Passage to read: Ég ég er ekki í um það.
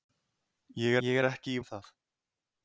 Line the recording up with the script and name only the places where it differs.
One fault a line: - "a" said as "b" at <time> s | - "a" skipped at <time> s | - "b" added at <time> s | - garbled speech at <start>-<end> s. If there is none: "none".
none